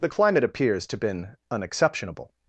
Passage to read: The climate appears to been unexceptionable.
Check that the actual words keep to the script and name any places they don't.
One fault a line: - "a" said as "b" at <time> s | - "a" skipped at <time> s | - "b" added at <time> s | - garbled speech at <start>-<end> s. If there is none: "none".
none